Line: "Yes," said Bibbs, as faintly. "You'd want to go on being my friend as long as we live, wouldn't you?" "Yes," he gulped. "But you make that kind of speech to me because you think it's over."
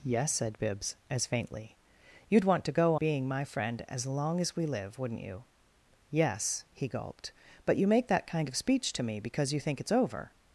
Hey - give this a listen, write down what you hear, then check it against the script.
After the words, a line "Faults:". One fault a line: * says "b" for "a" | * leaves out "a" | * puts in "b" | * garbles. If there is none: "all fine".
"Yes," said Bibbs, as faintly. "You'd want to go being my friend as long as we live, wouldn't you?" "Yes," he gulped. "But you make that kind of speech to me because you think it's over."
Faults:
* leaves out "on"